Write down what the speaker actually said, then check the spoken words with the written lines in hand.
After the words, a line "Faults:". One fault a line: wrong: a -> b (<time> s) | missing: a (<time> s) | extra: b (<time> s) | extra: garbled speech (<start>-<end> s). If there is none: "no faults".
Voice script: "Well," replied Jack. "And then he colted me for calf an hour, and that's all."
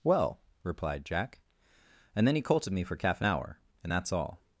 "Well," replied Jack. "And then he colted me for calf an hour, and that's all."
Faults:
no faults